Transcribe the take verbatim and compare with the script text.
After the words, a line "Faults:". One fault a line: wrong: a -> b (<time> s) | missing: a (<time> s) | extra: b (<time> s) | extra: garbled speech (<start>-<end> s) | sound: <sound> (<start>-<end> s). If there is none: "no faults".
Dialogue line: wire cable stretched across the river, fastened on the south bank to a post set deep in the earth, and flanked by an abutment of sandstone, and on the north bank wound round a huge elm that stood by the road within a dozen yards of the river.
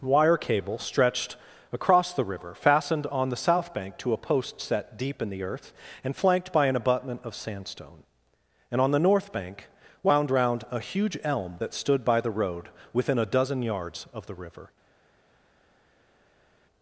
wire cable stretched across the river, fastened on the south bank to a post set deep in the earth, and flanked by an abutment of sandstone, and on the north bank wound round a huge elm that stood by the road within a dozen yards of the river.
Faults:
no faults